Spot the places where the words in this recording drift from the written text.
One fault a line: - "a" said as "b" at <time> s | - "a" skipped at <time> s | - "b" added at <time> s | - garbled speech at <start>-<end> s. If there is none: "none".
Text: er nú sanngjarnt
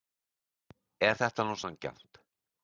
- "þetta" added at 1.2 s